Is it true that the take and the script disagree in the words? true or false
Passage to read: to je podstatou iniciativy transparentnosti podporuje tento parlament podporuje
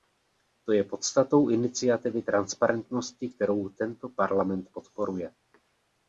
true